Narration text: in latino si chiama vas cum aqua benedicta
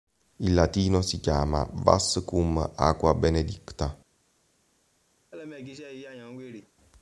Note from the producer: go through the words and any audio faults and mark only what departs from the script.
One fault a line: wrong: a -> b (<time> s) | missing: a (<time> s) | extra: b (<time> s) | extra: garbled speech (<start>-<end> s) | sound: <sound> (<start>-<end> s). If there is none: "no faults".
sound: laugh (5.3-6.7 s)